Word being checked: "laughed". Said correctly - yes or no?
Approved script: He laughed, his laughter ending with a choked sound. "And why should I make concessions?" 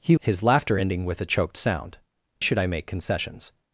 no